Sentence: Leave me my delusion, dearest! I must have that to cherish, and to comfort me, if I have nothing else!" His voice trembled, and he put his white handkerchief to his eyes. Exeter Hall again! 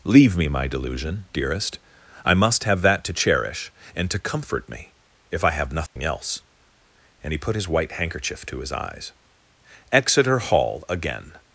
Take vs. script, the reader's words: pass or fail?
fail